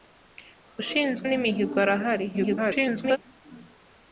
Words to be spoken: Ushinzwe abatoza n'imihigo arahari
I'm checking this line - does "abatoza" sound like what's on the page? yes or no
no